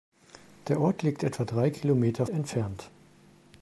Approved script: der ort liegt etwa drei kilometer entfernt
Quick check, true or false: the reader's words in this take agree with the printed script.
true